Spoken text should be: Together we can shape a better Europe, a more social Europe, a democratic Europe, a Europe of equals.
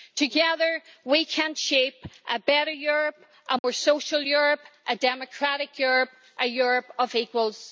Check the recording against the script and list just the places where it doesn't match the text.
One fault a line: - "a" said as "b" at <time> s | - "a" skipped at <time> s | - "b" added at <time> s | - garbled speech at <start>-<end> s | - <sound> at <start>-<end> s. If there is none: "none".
- dropout at 3.6-3.6 s